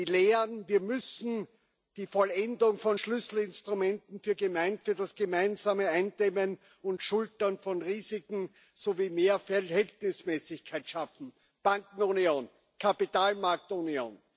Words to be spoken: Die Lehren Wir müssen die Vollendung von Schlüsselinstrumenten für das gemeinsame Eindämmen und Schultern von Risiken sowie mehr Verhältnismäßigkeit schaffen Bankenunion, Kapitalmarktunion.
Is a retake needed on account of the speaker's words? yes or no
no